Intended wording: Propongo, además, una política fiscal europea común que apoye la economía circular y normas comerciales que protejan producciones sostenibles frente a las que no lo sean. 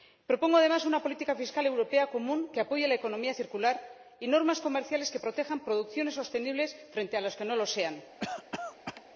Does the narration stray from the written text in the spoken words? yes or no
no